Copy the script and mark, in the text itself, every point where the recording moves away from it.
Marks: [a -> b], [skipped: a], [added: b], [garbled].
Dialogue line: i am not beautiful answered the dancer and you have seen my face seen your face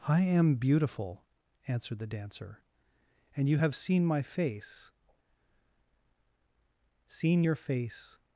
i am [skipped: not] beautiful answered the dancer and you have seen my face seen your face